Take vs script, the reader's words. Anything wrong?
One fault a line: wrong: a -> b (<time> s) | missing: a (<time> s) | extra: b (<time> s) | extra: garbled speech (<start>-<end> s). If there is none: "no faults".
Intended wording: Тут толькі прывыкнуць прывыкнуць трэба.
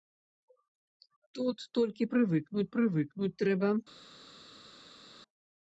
no faults